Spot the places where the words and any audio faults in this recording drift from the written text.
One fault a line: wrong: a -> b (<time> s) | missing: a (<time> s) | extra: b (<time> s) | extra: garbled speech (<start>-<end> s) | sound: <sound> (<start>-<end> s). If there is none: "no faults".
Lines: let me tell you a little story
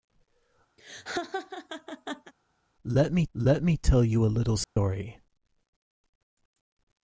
sound: laugh (0.8-2.3 s)
extra: let me (3.3 s)
sound: dropout (4.6-4.8 s)